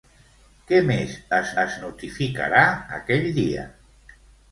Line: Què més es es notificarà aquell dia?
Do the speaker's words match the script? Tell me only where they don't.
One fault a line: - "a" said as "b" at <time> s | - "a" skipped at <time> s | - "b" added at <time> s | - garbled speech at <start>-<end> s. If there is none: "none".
none